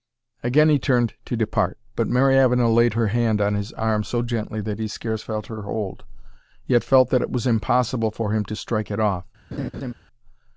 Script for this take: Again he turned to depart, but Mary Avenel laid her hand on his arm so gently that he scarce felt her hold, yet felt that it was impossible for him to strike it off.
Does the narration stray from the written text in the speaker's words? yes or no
no